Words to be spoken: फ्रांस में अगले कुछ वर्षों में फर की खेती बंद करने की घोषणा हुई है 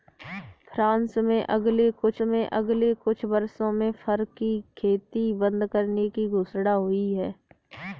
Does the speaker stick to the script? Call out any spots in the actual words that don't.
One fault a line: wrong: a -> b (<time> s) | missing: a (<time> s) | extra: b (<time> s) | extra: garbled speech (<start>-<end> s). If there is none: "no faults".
extra: में अगले कुछ (2.2 s)